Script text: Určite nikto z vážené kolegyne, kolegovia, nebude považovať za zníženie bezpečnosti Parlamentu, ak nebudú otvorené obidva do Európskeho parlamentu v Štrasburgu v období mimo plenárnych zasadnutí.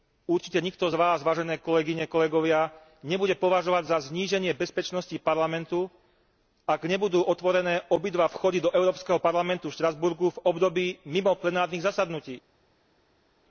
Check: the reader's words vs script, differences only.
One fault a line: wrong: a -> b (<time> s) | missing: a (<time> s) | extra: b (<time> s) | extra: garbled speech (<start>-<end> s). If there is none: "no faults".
extra: vás (0.9 s)
extra: vchody (8.3 s)